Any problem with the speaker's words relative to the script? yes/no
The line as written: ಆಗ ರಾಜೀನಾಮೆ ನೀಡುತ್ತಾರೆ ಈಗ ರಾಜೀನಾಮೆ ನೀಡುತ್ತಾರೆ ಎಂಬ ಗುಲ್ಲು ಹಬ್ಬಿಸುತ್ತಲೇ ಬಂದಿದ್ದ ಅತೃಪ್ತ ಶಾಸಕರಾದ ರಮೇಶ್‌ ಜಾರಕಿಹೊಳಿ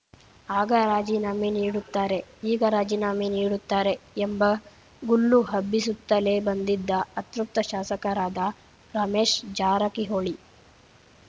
no